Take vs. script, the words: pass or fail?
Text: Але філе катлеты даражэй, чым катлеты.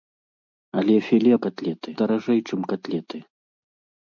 pass